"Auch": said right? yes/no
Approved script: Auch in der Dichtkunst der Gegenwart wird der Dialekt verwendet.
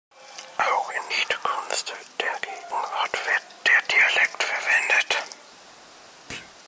yes